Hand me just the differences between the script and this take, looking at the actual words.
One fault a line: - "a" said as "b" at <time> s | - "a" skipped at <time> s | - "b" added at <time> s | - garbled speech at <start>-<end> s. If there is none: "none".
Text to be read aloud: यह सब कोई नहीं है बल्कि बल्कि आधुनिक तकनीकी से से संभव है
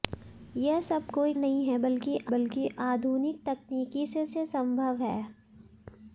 none